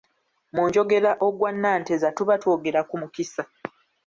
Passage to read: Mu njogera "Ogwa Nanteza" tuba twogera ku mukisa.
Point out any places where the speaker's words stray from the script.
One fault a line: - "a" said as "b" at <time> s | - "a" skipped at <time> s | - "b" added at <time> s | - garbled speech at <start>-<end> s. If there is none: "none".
none